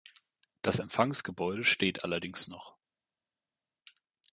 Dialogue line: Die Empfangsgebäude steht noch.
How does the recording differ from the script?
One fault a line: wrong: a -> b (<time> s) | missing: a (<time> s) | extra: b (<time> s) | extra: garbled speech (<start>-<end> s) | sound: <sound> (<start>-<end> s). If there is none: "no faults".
wrong: Die -> Das (0.6 s)
extra: allerdings (2.0 s)